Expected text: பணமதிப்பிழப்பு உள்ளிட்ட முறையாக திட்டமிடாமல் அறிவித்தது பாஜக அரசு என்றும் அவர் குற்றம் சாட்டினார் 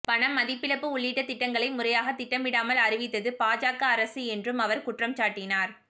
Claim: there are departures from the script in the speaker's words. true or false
true